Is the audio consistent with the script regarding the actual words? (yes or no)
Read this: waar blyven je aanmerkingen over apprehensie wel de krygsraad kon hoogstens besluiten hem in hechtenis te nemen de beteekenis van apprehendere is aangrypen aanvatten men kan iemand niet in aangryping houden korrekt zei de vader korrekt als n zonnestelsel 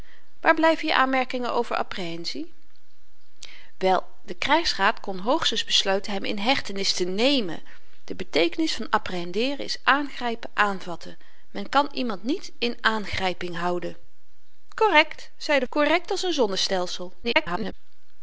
no